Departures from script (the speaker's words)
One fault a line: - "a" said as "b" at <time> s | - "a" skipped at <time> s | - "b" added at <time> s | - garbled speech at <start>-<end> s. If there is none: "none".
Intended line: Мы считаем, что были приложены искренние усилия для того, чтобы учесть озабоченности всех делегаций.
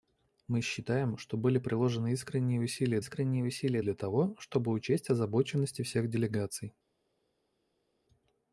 - "искренние усилия" added at 3.0 s